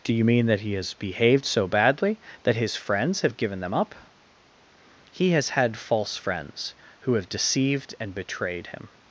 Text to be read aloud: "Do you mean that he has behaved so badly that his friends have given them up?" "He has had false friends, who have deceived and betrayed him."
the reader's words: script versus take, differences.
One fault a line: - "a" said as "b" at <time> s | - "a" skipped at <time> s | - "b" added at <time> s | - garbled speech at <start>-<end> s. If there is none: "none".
none